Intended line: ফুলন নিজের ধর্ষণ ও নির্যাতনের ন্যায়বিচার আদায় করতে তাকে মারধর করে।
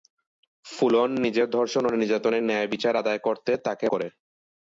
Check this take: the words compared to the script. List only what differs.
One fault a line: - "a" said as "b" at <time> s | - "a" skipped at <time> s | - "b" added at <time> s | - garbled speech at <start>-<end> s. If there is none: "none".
- "মারধর" skipped at 3.9 s